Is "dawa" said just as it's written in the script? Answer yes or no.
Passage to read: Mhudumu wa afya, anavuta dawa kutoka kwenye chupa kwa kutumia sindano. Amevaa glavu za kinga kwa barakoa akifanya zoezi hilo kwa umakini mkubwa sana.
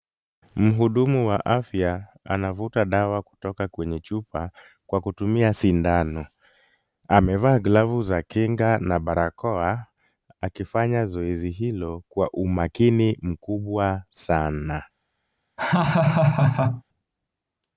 yes